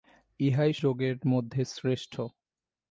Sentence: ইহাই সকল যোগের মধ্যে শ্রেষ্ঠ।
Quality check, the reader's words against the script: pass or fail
fail